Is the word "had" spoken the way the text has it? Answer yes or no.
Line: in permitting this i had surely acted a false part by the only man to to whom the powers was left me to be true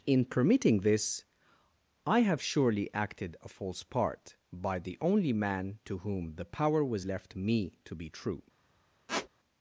no